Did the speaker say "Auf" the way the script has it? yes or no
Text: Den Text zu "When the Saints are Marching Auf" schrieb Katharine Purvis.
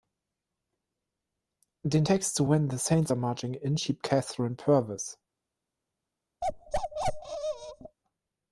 no